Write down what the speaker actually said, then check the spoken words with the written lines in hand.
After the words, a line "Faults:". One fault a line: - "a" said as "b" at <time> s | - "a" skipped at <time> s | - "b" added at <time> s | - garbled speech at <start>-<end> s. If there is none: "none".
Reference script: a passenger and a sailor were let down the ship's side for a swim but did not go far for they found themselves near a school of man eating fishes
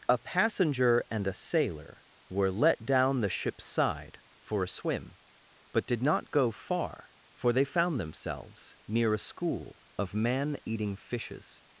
a passenger and a sailor were let down the ship's side for a swim but did not go far for they found themselves near a school of man eating fishes
Faults:
none